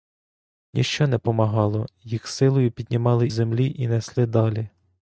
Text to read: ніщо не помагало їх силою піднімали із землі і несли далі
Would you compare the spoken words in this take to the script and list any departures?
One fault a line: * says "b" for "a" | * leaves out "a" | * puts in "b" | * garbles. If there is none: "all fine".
* leaves out "із"